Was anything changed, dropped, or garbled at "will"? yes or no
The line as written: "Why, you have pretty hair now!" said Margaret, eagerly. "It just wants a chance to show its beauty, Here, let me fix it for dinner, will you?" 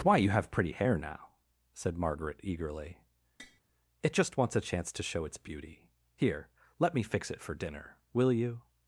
no